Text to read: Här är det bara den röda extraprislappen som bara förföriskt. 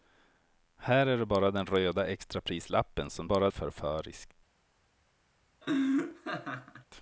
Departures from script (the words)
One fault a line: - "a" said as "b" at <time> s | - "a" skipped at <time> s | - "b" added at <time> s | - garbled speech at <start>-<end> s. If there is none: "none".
none